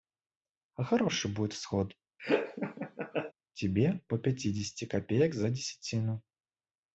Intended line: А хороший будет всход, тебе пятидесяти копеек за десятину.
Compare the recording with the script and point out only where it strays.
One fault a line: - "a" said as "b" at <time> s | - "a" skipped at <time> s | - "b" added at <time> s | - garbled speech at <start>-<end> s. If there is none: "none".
- "по" added at 4.1 s